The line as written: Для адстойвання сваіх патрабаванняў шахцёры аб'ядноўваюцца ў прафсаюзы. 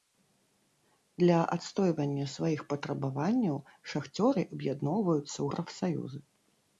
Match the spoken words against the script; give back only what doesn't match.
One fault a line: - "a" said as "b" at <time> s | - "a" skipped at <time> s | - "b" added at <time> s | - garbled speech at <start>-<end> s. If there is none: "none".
none